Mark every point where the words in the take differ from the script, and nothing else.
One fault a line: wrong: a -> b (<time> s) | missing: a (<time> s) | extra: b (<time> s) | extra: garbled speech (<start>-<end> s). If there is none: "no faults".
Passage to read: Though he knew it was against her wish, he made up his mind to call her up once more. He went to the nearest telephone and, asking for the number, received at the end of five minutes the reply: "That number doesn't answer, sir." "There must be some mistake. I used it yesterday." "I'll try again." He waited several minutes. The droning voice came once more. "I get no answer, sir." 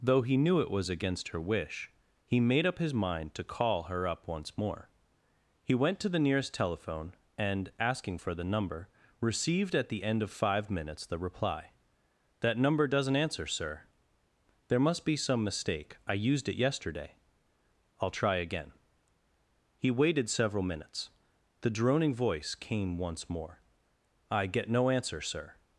no faults